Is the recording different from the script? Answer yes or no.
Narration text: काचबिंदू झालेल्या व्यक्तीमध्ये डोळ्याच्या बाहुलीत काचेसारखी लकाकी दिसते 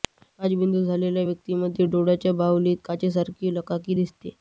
no